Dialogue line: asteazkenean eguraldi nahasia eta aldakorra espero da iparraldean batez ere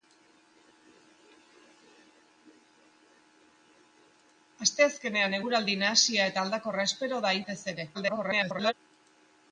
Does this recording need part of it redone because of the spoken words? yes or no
yes